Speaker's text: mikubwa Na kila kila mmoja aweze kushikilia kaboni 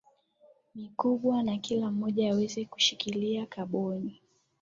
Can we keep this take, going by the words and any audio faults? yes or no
no